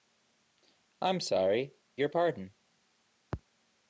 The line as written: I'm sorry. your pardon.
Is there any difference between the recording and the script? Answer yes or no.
no